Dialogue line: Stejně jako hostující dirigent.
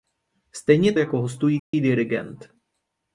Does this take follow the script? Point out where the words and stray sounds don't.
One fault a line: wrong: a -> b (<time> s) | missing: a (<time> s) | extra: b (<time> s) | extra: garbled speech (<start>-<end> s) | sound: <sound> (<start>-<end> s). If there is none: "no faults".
sound: dropout (1.6-1.7 s)